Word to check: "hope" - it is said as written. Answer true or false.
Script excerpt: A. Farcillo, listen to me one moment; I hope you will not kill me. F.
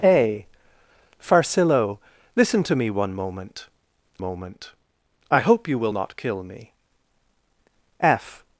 true